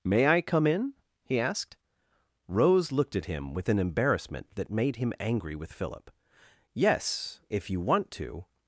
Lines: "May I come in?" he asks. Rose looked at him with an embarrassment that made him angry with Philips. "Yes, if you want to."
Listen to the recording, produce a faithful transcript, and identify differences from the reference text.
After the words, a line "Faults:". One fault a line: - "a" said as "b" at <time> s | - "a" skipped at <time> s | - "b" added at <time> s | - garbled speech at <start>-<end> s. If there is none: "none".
"May I come in?" he asked. Rose looked at him with an embarrassment that made him angry with Philip. "Yes, if you want to."
Faults:
- "asks" said as "asked" at 1.4 s
- "Philips" said as "Philip" at 5.7 s